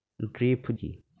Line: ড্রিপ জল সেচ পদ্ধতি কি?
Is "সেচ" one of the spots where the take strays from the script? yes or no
yes